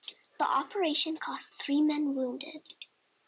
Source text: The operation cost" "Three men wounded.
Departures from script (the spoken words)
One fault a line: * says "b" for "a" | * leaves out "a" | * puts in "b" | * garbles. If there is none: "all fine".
all fine